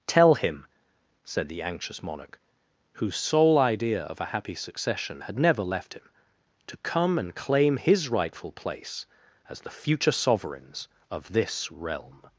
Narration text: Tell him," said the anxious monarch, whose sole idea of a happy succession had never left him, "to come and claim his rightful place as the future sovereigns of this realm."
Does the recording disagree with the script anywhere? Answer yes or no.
no